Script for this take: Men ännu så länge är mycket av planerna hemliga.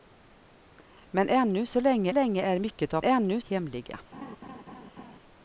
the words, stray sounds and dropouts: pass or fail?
fail